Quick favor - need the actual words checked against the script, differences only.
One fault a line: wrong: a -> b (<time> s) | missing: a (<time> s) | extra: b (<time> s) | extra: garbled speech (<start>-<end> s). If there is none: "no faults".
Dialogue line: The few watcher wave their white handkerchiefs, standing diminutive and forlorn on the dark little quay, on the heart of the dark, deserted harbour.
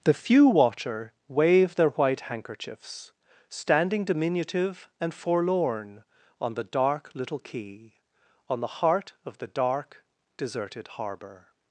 no faults